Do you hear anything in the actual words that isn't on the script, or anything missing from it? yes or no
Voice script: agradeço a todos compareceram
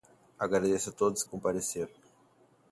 no